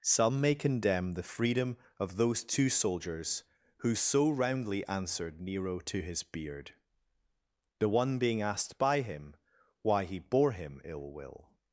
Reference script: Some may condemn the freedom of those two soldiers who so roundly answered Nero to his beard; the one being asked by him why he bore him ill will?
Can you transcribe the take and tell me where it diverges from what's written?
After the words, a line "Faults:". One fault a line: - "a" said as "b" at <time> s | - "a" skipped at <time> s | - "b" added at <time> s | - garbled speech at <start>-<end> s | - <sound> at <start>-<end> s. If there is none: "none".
Some may condemn the freedom of those two soldiers who so roundly answered Nero to his beard; the one being asked by him why he bore him ill will?
Faults:
none